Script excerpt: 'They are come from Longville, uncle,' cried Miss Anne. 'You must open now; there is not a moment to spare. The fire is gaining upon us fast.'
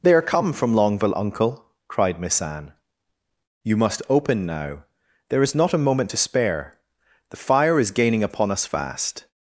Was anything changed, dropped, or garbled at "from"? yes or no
no